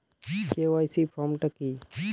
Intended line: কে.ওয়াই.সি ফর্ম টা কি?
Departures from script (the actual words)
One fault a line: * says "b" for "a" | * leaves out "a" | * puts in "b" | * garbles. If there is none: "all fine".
all fine